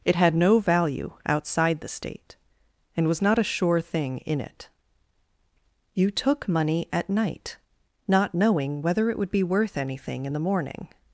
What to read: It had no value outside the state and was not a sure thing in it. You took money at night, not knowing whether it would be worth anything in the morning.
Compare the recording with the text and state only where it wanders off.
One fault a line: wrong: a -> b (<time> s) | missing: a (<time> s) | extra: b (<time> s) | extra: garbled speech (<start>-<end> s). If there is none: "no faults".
no faults